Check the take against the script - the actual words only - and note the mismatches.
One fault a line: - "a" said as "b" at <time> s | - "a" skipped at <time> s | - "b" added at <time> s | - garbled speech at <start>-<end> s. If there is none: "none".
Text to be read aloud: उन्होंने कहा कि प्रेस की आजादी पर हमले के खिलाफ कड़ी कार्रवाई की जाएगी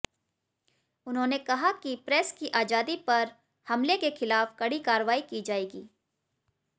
none